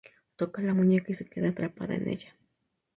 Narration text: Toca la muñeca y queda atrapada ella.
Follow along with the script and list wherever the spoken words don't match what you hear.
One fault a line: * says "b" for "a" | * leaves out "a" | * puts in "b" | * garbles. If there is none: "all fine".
* puts in "se"
* puts in "en"